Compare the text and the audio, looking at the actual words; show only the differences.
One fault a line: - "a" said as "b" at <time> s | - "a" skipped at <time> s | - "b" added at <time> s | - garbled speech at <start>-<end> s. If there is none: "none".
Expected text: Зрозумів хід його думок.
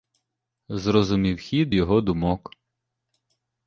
none